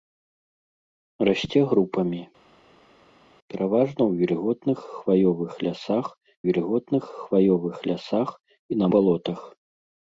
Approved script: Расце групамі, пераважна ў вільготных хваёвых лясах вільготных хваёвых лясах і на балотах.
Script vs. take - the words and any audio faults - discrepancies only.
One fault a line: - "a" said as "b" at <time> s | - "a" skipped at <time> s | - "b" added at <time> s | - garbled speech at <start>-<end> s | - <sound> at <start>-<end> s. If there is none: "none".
none